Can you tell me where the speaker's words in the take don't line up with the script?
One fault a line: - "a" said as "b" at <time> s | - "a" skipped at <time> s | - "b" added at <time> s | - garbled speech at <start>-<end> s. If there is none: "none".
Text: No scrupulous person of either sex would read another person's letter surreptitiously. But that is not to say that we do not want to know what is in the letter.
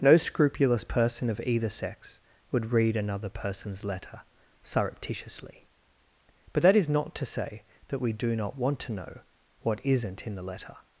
- "is" said as "isn't" at 9.8 s